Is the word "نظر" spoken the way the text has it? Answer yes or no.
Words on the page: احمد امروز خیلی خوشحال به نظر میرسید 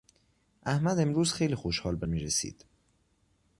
no